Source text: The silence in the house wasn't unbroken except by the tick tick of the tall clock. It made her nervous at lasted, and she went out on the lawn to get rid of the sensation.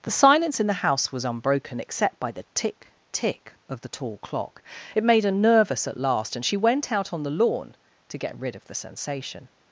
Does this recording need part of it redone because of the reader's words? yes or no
yes